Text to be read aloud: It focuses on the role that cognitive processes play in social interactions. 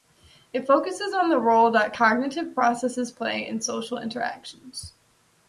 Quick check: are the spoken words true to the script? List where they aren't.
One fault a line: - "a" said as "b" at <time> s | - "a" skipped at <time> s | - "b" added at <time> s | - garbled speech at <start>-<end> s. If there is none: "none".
none